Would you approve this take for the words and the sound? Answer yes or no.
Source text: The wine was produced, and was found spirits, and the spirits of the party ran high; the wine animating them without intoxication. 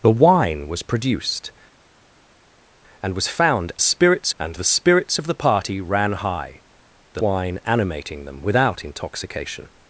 yes